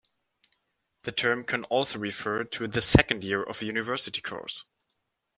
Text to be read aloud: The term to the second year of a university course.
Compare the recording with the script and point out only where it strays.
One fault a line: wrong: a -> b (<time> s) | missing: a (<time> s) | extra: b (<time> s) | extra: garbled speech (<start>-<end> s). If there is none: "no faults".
extra: can also refer (1.4 s)